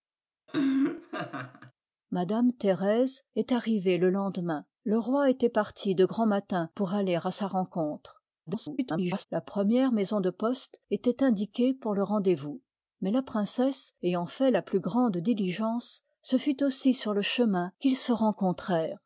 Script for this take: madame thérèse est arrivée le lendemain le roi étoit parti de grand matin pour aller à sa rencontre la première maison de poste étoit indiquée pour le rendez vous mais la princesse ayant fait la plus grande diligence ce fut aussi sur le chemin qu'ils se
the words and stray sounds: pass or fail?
fail